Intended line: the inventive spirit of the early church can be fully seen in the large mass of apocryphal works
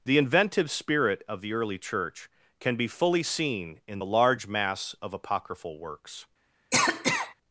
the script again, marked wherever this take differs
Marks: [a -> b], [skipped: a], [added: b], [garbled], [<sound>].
the inventive spirit of the early church can be fully seen in the large mass of apocryphal works [cough]